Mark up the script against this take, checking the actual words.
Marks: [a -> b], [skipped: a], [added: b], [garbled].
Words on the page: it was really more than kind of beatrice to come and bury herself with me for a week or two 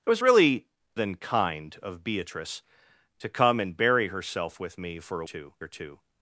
it was really [skipped: more] than kind of beatrice to come and bury herself with me for a [week -> two] or two